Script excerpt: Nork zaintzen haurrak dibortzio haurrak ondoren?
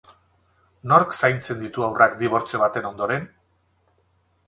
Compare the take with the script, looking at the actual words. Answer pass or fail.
fail